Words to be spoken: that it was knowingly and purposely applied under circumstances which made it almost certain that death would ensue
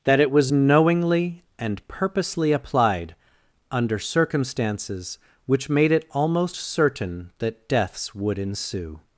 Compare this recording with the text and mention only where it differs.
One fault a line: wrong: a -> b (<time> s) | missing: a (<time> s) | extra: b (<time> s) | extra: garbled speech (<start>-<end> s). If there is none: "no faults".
wrong: death -> deaths (7.7 s)